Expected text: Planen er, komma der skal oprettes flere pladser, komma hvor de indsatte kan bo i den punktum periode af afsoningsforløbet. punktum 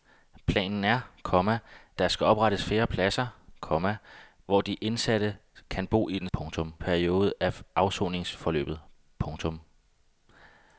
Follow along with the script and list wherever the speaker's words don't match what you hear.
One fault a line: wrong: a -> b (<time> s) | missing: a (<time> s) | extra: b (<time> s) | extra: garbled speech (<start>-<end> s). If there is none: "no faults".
no faults